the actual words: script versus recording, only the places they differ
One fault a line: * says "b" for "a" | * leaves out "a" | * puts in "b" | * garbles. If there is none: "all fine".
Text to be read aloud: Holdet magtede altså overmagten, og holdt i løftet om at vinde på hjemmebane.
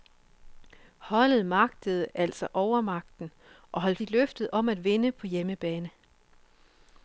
all fine